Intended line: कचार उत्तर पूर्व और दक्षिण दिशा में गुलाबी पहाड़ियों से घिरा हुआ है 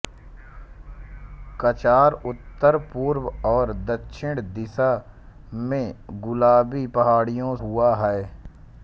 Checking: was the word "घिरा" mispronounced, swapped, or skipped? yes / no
yes